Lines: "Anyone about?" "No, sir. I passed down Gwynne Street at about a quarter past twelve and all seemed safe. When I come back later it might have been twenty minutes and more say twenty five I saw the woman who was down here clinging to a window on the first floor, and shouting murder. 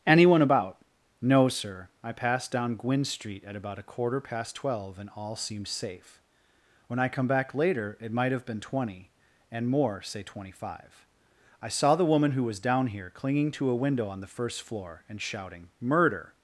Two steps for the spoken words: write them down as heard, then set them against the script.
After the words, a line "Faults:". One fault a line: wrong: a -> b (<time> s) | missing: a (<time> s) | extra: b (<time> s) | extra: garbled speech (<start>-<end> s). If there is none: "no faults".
"Anyone about?" "No, sir. I passed down Gwynne Street at about a quarter past twelve and all seemed safe. When I come back later it might have been twenty and more say twenty five I saw the woman who was down here clinging to a window on the first floor, and shouting murder.
Faults:
missing: minutes (9.1 s)